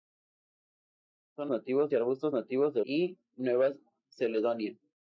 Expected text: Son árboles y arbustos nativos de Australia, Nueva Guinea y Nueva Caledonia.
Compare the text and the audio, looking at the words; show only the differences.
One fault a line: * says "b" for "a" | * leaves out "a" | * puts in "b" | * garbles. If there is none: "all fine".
* says "nativos" for "árboles"
* leaves out "Australia Nueva Guinea"